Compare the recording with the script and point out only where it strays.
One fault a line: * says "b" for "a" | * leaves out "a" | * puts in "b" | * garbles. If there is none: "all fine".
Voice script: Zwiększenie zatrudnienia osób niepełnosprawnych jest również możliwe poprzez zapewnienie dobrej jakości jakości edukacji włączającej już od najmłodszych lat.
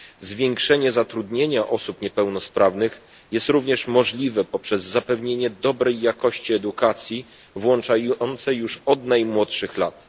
* leaves out "jakości"